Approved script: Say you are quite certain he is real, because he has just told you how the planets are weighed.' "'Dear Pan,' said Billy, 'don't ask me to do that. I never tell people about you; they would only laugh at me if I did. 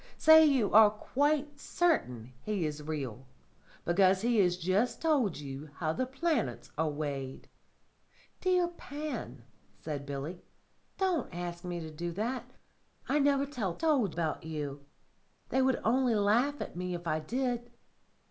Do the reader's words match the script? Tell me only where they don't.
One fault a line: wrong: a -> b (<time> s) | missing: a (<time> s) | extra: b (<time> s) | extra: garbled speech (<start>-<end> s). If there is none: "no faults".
wrong: people -> told (13.8 s)